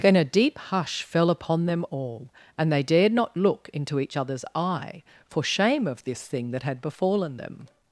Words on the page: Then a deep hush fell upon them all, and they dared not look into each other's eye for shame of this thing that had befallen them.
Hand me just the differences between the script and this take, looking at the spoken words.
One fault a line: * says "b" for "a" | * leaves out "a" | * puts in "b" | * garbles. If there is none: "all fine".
all fine